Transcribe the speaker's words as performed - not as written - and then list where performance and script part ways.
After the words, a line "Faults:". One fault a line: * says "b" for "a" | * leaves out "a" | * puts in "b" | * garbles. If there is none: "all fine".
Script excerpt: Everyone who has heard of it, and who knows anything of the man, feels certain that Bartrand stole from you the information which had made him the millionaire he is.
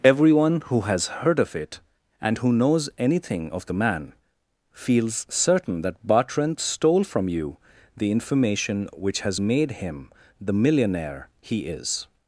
Everyone who has heard of it, and who knows anything of the man, feels certain that Bartrand stole from you the information which has made him the millionaire he is.
Faults:
* says "has" for "had"